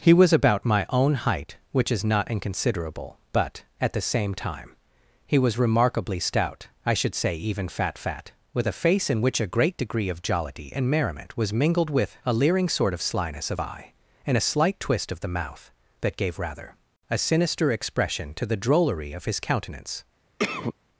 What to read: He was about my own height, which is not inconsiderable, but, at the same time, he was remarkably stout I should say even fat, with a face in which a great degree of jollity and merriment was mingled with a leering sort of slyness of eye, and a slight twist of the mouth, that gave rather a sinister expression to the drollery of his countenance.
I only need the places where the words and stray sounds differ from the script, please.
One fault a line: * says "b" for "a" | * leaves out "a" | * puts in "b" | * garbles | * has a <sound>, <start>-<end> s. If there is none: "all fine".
* puts in "fat"
* has a cough, 20.4-20.7 s